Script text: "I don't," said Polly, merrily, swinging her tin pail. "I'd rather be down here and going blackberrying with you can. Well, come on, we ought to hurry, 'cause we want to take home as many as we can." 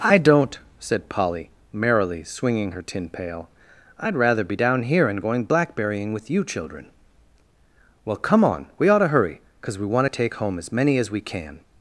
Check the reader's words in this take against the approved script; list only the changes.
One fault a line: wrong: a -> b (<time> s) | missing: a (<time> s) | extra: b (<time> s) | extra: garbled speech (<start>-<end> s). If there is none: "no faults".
wrong: can -> children (6.4 s)